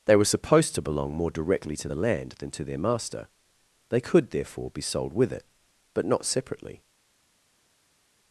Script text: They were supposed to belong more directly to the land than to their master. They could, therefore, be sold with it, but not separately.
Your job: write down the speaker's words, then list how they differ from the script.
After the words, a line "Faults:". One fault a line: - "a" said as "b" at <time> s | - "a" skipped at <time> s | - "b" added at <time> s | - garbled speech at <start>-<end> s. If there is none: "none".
They were supposed to belong more directly to the land than to their master. They could, therefore, be sold with it, but not separately.
Faults:
none